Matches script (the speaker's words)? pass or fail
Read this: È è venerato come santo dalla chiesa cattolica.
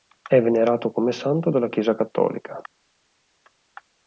fail